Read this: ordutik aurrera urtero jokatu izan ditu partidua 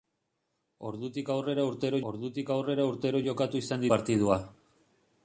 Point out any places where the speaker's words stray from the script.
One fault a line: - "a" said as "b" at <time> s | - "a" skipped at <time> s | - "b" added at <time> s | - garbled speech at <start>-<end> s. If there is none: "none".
- "ordutik aurrera urtero" added at 2.1 s
- "ditu" skipped at 3.9 s